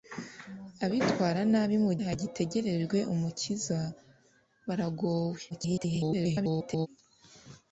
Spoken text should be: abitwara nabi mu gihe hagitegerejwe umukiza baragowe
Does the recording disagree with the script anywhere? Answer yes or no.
yes